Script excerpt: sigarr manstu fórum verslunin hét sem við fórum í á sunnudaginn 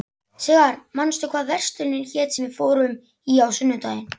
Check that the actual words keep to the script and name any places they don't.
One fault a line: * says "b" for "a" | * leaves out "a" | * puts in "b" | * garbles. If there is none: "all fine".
* says "hvað" for "fórum"